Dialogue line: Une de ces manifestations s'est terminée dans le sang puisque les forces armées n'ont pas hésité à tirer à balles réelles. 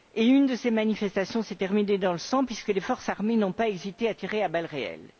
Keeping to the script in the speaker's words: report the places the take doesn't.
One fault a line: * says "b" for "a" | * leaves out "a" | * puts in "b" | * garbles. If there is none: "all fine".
all fine